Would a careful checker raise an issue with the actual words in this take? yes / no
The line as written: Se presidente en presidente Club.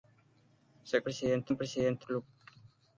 no